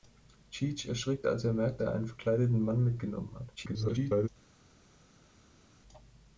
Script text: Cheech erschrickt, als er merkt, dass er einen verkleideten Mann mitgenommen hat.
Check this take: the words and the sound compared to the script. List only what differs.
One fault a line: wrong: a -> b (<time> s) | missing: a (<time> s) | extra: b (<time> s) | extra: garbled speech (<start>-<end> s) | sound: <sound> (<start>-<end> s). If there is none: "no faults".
missing: dass (1.8 s)
extra: garbled speech (3.6-4.3 s)